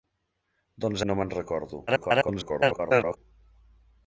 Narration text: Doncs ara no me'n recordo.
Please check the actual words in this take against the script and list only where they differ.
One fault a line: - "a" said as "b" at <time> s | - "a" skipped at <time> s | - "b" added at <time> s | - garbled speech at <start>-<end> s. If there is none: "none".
- "ara" skipped at 1.0 s
- garbled speech at 1.9-3.2 s